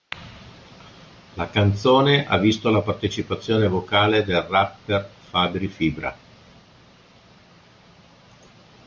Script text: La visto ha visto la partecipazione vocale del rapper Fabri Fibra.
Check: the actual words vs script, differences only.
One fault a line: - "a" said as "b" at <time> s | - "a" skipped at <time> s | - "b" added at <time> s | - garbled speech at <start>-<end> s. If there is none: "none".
- "visto" said as "canzone" at 1.5 s